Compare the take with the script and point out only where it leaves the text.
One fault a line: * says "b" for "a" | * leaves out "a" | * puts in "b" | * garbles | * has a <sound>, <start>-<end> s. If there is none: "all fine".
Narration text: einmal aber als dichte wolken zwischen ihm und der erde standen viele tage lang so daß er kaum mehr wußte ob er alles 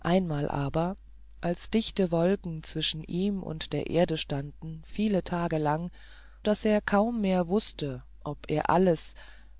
* leaves out "so"